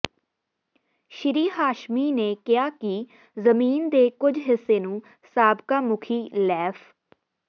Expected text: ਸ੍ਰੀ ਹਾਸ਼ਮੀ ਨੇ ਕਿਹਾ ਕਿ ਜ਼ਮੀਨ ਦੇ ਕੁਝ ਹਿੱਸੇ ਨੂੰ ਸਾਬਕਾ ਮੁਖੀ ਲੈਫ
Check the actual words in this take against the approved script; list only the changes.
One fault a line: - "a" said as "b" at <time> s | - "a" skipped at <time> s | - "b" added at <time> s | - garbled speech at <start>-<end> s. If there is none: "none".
none